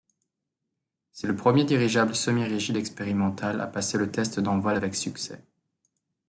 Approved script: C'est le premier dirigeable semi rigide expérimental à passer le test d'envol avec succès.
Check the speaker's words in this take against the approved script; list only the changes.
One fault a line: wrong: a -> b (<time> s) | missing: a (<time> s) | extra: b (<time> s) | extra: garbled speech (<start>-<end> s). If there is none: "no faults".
no faults